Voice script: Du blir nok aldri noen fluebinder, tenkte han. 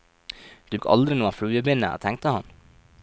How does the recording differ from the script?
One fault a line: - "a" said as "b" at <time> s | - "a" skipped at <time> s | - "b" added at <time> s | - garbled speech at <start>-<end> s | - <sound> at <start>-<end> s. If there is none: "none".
- "blir" skipped at 0.8 s